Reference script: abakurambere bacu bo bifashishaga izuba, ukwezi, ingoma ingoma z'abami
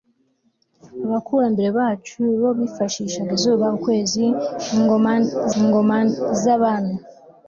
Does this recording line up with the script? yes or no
yes